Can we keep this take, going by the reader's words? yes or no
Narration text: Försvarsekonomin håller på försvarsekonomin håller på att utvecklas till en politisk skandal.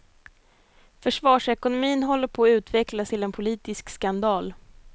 no